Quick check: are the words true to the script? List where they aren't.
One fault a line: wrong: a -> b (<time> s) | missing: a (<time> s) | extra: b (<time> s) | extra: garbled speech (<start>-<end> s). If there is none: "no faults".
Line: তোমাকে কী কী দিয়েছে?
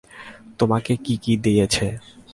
no faults